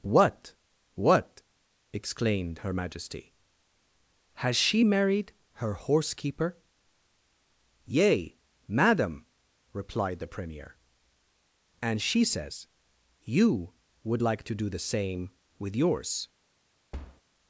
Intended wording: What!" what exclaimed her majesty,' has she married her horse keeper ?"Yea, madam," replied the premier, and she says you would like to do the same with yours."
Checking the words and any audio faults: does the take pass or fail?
fail